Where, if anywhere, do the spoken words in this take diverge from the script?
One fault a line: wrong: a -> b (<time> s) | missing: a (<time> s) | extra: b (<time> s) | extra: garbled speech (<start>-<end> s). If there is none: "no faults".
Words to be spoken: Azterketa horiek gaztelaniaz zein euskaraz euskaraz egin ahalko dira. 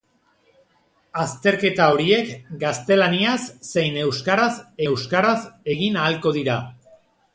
no faults